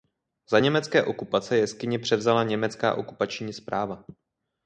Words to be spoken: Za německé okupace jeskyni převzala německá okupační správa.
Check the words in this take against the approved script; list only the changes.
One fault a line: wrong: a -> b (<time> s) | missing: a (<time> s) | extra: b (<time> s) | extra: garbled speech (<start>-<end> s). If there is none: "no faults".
no faults